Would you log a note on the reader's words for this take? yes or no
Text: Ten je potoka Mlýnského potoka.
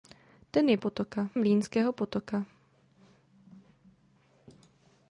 no